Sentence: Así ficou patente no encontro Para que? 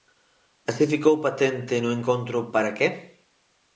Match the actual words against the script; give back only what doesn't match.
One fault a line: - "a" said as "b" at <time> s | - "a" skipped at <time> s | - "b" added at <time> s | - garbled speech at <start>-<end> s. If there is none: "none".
none